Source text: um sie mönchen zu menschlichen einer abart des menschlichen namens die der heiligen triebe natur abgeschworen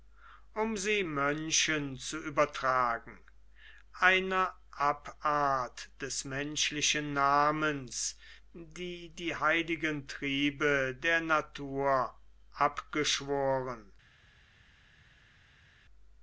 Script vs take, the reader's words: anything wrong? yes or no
yes